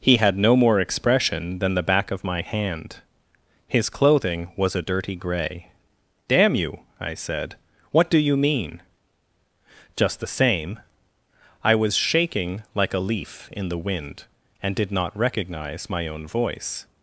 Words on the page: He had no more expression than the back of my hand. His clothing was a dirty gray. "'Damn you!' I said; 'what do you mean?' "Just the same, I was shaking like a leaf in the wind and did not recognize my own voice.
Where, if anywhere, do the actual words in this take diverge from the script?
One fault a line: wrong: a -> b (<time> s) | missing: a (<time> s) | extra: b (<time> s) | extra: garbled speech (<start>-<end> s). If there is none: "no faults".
no faults